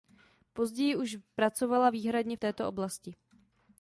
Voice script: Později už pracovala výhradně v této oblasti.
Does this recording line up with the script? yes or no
yes